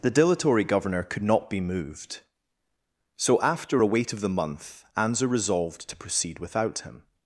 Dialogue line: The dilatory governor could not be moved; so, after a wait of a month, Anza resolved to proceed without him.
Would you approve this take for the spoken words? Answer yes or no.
no